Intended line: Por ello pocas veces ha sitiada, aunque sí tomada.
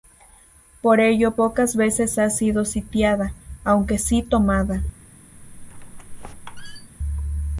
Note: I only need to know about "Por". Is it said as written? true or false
true